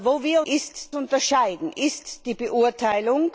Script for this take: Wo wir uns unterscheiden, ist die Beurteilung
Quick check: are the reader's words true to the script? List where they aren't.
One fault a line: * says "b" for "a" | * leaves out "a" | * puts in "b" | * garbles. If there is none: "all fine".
* says "ist" for "uns"